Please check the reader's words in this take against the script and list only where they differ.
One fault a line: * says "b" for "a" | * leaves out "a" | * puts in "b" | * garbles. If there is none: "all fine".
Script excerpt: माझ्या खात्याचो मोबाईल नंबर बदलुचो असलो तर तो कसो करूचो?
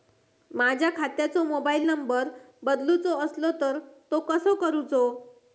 all fine